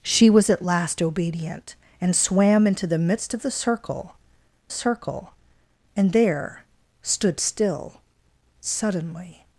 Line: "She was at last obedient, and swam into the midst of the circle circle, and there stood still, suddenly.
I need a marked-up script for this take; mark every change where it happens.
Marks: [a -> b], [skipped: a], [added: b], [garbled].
"She was at last obedient, and swam into the midst of the circle circle, and there stood still, suddenly.